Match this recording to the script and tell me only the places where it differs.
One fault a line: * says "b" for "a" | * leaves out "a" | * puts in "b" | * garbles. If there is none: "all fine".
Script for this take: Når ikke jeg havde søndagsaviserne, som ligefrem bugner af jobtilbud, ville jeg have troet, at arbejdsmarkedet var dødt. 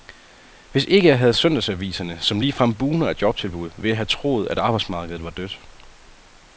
* says "Hvis" for "Når"